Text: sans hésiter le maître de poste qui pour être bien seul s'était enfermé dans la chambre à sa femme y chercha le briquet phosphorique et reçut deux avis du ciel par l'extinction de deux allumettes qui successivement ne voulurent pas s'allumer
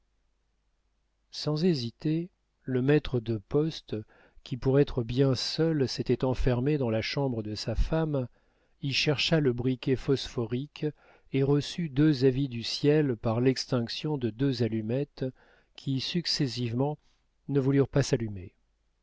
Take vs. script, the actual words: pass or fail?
fail